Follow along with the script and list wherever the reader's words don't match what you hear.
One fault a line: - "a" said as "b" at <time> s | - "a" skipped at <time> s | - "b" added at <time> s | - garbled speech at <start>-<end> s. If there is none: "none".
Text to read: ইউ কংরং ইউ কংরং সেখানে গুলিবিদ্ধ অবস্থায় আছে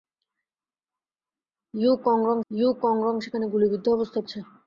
none